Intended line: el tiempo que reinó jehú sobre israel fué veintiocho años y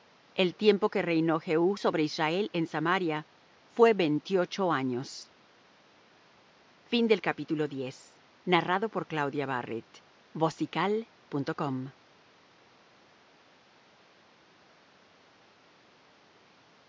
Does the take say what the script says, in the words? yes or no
no